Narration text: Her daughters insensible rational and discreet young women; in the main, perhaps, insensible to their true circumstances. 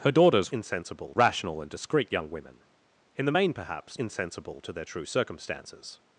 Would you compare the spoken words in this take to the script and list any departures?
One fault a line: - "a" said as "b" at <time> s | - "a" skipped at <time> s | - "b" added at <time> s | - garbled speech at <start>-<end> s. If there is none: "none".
none